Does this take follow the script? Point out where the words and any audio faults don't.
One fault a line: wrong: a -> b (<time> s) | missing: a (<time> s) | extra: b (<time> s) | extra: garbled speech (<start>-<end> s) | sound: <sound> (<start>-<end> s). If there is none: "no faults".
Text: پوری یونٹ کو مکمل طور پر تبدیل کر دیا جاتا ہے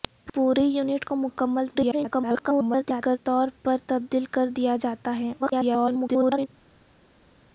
extra: garbled speech (1.7-3.2 s)
extra: garbled speech (5.4-6.5 s)